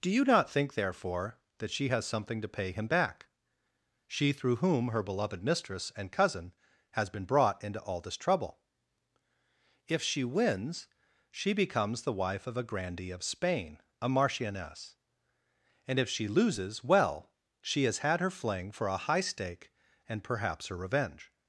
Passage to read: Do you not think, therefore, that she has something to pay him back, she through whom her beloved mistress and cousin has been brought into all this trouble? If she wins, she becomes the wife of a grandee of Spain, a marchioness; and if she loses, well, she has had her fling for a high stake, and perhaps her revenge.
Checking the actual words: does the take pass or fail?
pass